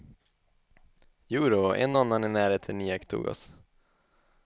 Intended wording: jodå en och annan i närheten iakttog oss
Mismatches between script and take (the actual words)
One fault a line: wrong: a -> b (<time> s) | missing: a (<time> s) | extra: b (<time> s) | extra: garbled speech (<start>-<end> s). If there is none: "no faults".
no faults